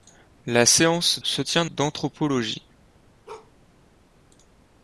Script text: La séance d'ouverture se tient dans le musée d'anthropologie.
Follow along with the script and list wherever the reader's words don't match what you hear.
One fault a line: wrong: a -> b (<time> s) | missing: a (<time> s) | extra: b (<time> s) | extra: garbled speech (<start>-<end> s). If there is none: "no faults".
missing: d'ouverture (1.2 s)
missing: dans le musée (1.7 s)